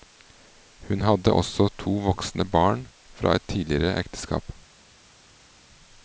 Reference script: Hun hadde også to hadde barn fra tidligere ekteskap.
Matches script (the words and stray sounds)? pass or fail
fail